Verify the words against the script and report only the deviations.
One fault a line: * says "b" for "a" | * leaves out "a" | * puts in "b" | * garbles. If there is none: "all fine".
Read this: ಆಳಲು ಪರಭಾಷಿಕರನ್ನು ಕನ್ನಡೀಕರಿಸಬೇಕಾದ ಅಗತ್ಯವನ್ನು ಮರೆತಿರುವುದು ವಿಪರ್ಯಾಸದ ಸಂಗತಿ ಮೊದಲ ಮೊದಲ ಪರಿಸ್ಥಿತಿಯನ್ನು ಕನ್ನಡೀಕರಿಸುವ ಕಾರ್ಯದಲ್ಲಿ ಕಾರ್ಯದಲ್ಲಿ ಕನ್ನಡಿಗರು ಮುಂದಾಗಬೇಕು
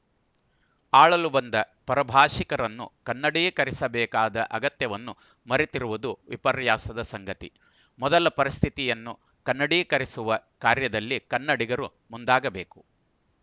* puts in "ಬಂದ"
* leaves out "ಮೊದಲ"
* leaves out "ಕಾರ್ಯದಲ್ಲಿ"